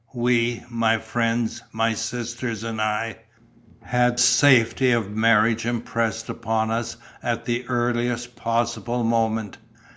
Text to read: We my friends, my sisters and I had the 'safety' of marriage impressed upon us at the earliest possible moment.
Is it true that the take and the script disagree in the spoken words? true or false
true